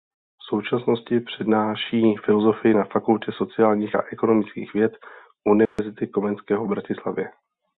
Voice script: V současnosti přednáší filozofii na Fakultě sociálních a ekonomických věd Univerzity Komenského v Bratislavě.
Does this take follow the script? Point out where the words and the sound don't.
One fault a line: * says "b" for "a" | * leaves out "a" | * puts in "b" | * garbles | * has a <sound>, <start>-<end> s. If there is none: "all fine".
* has a dropout, 5.7-5.8 s